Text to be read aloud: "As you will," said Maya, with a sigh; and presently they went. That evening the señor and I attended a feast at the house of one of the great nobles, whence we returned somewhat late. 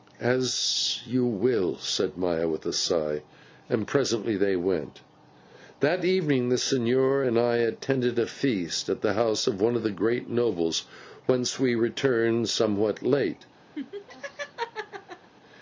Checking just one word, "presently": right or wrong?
right